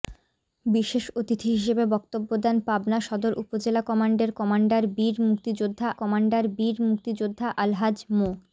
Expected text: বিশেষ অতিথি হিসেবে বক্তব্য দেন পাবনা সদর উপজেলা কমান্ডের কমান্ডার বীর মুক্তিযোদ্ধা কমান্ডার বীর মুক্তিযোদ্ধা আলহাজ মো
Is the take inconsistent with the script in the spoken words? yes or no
no